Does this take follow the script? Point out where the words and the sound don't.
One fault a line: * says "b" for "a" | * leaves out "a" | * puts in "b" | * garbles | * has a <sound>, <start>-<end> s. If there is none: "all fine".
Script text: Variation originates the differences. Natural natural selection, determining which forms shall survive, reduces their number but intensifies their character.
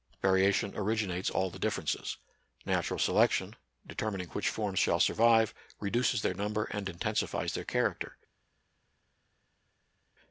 * puts in "all"
* leaves out "natural"
* says "and" for "but"